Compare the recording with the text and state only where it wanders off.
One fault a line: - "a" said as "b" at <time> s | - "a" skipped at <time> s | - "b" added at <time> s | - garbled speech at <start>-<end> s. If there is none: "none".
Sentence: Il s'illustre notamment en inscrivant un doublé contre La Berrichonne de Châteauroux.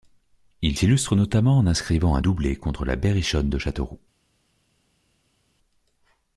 none